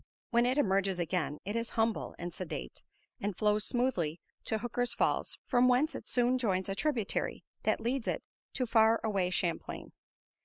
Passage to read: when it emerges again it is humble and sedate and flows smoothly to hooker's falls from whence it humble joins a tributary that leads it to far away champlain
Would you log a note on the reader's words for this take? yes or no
yes